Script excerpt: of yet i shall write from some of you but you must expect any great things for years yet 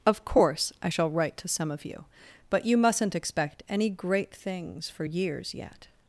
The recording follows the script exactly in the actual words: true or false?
false